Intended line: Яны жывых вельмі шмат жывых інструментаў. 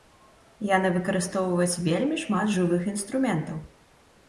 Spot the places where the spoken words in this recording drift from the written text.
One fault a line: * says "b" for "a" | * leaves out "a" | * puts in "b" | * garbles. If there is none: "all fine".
* says "выкарыстоўваюць" for "жывых"